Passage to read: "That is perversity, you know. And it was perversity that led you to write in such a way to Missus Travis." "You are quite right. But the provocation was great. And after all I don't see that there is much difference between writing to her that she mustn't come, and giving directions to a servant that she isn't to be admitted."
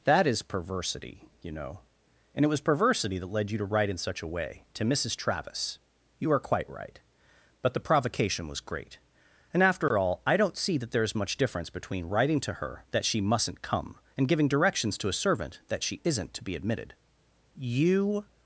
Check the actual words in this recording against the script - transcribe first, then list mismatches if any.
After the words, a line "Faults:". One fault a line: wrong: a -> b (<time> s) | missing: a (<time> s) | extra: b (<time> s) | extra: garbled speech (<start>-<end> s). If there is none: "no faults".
"That is perversity, you know. And it was perversity that led you to write in such a way to Missus Travis." "You are quite right. But the provocation was great. And after all I don't see that there is much difference between writing to her that she mustn't come, and giving directions to a servant that she isn't to be admitted." "You
Faults:
extra: You (17.6 s)